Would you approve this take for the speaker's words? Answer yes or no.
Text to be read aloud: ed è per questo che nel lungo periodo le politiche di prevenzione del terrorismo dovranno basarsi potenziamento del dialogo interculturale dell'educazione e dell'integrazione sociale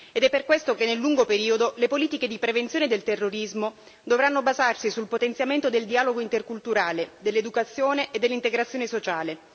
no